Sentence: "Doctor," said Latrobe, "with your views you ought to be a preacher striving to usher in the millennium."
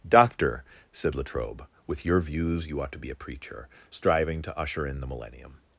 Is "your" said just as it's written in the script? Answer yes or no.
yes